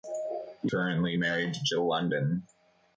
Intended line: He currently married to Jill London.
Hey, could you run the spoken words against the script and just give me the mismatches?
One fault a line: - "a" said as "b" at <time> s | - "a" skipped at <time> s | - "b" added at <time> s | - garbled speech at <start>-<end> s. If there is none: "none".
none